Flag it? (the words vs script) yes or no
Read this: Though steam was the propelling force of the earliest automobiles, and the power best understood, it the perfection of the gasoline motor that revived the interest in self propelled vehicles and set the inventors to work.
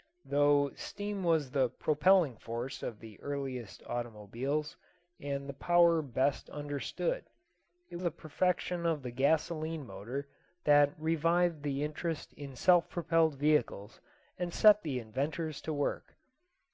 no